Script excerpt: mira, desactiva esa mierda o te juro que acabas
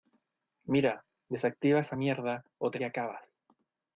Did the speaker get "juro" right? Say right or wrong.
wrong